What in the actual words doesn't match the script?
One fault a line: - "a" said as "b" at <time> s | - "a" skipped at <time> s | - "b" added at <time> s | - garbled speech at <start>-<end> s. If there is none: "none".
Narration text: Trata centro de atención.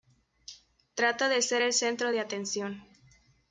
- "de ser el" added at 1.3 s